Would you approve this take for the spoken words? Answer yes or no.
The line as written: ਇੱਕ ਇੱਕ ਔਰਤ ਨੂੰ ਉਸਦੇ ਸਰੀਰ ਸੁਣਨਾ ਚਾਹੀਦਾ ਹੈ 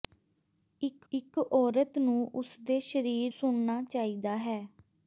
yes